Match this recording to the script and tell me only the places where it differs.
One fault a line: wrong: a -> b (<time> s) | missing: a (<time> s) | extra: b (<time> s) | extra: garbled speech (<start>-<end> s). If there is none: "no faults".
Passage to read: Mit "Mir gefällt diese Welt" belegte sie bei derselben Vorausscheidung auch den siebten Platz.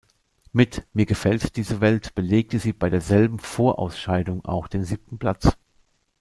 no faults